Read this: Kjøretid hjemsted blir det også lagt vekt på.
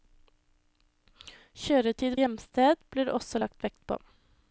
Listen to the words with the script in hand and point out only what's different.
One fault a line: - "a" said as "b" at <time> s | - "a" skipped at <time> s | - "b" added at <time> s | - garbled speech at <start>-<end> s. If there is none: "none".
none